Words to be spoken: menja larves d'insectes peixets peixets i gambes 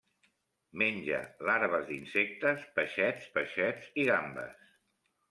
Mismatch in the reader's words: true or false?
false